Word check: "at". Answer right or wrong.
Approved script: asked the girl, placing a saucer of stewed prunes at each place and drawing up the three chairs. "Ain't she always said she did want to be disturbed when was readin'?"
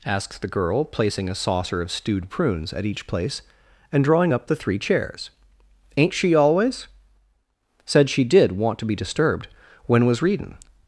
right